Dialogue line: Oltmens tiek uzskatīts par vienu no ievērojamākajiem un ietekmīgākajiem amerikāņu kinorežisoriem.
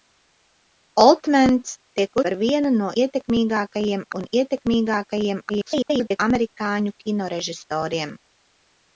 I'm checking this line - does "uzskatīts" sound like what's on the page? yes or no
no